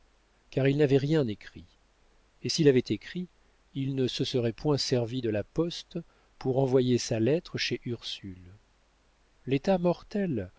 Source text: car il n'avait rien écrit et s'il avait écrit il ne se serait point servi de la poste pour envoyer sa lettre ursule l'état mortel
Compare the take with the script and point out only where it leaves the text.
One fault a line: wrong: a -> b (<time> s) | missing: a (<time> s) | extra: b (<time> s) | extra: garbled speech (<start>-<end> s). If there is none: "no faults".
extra: chez (7.6 s)